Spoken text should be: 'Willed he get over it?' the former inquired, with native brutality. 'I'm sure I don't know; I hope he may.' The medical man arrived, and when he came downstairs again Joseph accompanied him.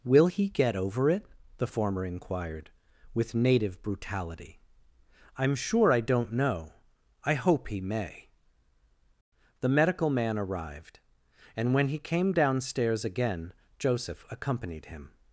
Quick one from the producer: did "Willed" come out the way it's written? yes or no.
no